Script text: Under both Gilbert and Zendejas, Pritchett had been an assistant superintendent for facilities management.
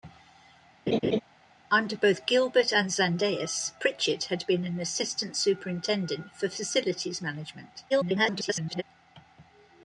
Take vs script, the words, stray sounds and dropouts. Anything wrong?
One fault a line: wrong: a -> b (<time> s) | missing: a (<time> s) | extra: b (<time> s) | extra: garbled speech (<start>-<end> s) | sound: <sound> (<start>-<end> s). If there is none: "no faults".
sound: laugh (0.9-1.2 s)
extra: garbled speech (7.9-8.8 s)